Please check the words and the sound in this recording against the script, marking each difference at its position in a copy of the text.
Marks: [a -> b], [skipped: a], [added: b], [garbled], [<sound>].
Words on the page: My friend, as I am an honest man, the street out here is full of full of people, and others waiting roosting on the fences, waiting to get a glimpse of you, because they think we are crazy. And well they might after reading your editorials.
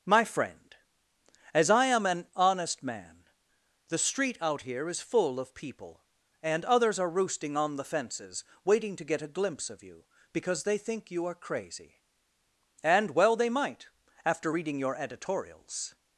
My friend, as I am an honest man, the street out here is full of [skipped: full of] people, and others [waiting -> are] roosting on the fences, waiting to get a glimpse of you, because they think [we -> you] are crazy. And well they might after reading your editorials.